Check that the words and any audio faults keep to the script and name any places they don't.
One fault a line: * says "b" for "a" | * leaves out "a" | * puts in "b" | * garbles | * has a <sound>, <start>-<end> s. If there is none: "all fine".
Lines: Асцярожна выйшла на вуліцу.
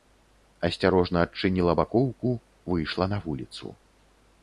* puts in "адчыніла бакоўку"